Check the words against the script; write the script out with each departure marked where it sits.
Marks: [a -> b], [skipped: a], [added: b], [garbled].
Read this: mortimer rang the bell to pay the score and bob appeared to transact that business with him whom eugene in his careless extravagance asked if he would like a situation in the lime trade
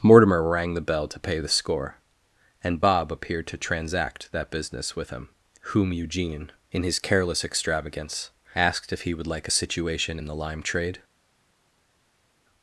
mortimer rang the bell to pay the score and bob appeared to transact that business with him whom eugene in his careless extravagance asked if he would like a situation in the lime trade